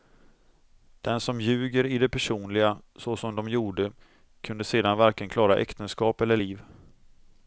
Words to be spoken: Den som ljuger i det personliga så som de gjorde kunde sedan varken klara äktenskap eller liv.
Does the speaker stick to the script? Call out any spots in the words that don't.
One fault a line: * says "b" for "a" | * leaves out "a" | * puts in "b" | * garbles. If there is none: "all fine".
all fine